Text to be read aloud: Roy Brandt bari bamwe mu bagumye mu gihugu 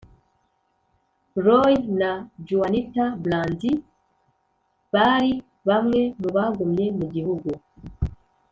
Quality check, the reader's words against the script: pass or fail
fail